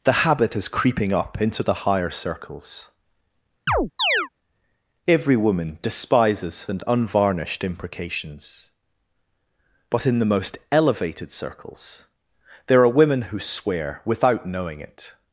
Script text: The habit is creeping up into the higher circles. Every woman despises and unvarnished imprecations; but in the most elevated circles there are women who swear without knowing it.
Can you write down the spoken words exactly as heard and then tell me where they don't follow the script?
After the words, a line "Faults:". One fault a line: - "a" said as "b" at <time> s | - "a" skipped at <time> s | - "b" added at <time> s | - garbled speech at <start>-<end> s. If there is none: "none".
The habit is creeping up into the higher circles. Every woman despises and unvarnished imprecations; but in the most elevated circles there are women who swear without knowing it.
Faults:
none